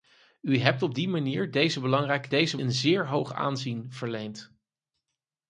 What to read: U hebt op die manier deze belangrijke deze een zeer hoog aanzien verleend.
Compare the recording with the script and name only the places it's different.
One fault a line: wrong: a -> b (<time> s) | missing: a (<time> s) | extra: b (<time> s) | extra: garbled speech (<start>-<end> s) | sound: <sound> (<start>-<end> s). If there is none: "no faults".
no faults